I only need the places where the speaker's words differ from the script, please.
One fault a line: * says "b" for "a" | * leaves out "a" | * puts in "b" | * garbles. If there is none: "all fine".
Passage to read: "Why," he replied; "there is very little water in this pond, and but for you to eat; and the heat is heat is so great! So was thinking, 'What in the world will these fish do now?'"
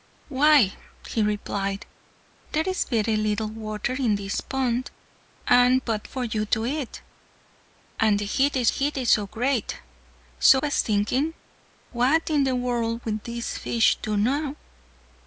all fine